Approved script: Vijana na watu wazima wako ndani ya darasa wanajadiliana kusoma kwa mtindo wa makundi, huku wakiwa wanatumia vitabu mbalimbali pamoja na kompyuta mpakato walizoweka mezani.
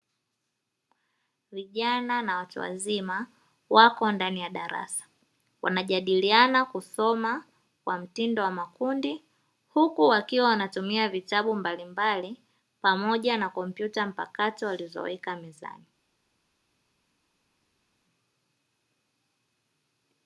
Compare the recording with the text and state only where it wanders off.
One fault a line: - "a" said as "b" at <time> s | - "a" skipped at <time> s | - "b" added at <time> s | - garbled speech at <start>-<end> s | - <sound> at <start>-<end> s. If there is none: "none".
none